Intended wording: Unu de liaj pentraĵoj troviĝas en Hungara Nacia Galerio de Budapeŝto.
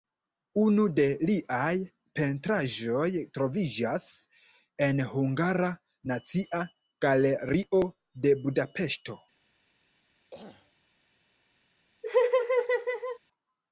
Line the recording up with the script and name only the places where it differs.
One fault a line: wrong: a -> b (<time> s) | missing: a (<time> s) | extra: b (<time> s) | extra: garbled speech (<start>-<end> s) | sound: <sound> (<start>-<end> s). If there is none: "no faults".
sound: throat clearing (10.3-10.7 s)
sound: laugh (12.0-13.2 s)